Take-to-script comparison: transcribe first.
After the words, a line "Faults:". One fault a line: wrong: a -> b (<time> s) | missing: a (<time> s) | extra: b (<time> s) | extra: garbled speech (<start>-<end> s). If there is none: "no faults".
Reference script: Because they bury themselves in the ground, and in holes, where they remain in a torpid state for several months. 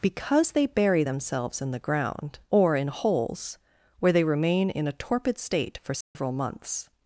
Because they bury themselves in the ground, or in holes, where they remain in a torpid state for several months.
Faults:
wrong: and -> or (2.5 s)